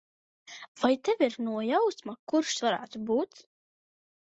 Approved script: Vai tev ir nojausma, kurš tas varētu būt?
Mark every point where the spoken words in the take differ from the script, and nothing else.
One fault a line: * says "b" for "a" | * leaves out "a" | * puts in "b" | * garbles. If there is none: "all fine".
* leaves out "tas"